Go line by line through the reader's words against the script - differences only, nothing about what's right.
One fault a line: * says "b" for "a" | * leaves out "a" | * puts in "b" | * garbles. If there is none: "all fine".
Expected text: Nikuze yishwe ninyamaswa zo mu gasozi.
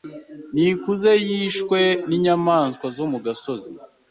all fine